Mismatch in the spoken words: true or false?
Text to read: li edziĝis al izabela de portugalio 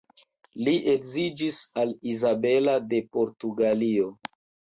false